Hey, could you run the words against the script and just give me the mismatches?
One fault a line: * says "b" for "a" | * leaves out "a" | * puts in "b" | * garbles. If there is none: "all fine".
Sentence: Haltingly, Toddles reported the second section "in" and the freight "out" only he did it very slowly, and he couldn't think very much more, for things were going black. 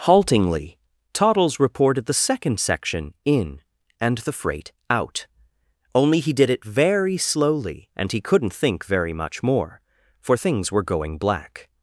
all fine